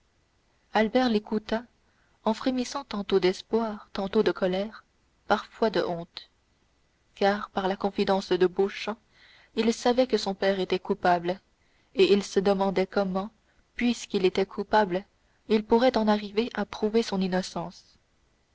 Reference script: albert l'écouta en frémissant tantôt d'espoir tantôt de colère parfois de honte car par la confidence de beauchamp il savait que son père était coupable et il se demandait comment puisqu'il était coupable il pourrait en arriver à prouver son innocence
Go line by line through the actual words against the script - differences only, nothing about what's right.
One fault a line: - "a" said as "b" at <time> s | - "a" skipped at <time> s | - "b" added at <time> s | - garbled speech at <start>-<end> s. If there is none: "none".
none